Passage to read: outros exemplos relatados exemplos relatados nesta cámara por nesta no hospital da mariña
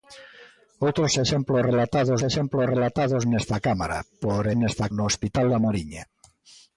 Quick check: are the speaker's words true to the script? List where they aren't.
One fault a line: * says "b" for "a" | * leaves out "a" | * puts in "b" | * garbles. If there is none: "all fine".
all fine